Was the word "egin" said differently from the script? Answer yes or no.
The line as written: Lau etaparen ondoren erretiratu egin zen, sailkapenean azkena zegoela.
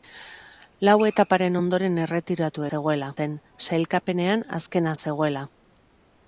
yes